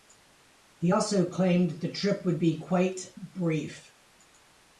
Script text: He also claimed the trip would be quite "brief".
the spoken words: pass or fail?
pass